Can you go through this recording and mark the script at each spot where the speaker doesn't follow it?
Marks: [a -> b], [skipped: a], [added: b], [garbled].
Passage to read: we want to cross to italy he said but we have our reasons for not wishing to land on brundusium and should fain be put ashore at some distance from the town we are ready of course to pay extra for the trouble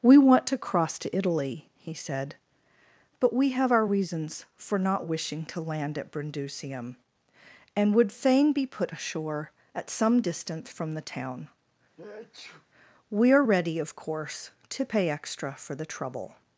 we want to cross to italy he said but we have our reasons for not wishing to land [on -> at] brundusium and [should -> would] fain be put ashore at some distance from the town we are ready of course to pay extra for the trouble